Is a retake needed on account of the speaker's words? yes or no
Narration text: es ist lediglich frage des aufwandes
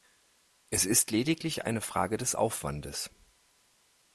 yes